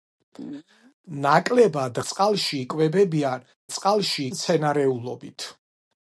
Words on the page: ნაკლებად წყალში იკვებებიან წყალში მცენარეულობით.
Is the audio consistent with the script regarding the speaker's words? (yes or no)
yes